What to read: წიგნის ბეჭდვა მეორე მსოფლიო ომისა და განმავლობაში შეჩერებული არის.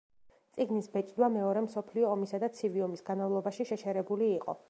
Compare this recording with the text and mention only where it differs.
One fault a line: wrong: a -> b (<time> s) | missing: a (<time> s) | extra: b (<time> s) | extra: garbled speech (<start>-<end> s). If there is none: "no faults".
extra: ცივი ომის (2.6 s)
wrong: არის -> იყო (4.4 s)